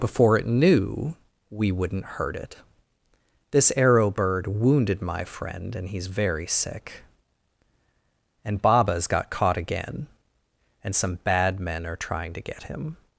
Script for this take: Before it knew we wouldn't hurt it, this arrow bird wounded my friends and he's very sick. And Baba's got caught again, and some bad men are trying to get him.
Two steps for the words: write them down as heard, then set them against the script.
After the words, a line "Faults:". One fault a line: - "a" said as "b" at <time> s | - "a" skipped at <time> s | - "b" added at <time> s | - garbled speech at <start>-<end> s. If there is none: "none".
Before it knew we wouldn't hurt it, this arrow bird wounded my friend and he's very sick. And Baba's got caught again, and some bad men are trying to get him.
Faults:
- "friends" said as "friend" at 5.2 s